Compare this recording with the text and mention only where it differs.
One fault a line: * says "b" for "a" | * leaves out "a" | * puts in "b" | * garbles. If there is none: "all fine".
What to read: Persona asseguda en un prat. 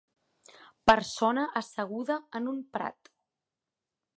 all fine